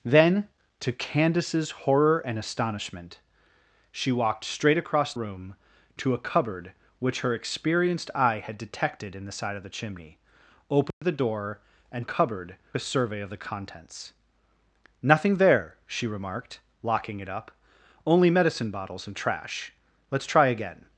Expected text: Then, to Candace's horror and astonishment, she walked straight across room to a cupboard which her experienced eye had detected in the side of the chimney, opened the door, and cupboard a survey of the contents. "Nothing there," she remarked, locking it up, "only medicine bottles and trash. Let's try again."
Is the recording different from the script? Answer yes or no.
no